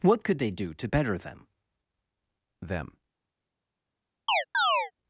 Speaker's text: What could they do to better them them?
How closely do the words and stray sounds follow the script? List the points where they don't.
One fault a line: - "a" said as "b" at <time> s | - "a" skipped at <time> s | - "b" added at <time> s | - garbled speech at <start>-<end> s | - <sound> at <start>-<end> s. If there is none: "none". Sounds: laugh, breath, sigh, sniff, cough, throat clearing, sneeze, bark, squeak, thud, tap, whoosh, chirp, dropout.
- chirp at 4.3-4.9 s